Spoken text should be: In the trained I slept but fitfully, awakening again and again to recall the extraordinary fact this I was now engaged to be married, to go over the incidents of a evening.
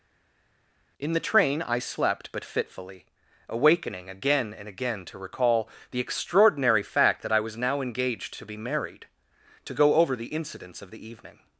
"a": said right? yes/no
no